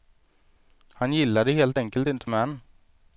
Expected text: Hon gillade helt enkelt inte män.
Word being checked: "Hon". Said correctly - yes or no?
no